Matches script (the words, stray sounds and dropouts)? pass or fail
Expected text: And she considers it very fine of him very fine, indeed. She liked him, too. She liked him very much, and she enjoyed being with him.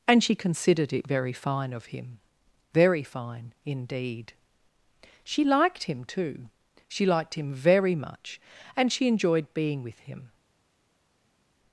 fail